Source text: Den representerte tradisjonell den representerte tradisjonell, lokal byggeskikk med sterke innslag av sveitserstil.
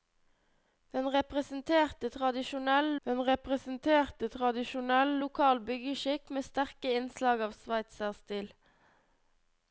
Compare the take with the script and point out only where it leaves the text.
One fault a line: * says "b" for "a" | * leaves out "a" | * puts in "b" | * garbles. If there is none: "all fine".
all fine